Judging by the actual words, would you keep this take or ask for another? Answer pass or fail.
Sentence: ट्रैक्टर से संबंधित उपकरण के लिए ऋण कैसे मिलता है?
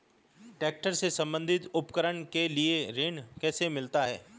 pass